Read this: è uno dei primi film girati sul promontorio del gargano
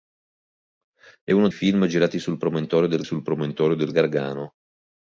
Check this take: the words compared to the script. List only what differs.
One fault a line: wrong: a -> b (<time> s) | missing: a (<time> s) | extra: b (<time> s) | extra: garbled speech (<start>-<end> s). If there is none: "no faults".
wrong: dei primi film girati -> film girati sul promontorio del (1.5 s)